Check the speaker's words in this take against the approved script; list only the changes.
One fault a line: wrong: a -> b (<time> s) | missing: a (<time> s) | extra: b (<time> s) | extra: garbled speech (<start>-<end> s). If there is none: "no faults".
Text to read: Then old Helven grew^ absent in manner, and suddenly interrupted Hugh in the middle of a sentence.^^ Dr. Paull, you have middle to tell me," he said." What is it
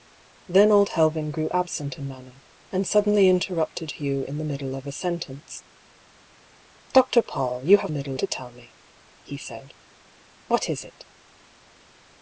no faults